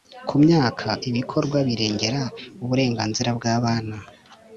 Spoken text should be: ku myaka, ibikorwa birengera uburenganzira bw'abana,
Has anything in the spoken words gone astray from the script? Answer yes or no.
no